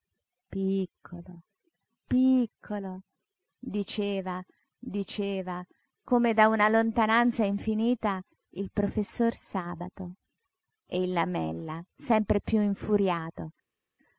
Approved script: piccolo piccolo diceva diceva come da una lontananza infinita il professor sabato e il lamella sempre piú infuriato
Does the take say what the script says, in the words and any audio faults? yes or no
yes